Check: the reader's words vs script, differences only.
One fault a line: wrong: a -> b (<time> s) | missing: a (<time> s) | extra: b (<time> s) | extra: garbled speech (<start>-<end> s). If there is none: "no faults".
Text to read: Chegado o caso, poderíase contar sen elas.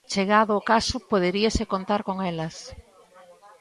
wrong: sen -> con (2.1 s)